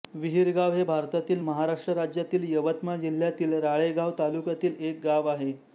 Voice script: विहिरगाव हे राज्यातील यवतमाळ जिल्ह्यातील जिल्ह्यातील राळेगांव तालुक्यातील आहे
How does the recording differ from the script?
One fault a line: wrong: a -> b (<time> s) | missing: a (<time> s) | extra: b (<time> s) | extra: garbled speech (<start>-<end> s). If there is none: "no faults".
extra: भारतातील महाराष्ट्र (0.8 s)
missing: जिल्ह्यातील (3.5 s)
extra: एक गाव (4.8 s)